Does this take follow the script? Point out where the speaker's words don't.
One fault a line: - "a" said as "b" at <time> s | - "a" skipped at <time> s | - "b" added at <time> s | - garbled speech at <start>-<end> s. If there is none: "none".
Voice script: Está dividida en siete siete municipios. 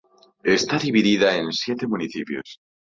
- "siete" skipped at 1.8 s